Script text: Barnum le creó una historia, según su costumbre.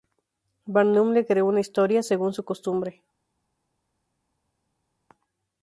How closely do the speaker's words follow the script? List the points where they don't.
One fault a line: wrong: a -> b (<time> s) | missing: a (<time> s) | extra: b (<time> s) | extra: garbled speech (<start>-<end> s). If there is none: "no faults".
no faults